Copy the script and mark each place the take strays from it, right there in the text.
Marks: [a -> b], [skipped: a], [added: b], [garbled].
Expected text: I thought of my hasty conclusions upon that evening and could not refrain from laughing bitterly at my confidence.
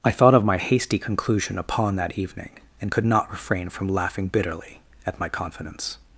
I thought of my hasty [conclusions -> conclusion] upon that evening and could not refrain from laughing bitterly at my confidence.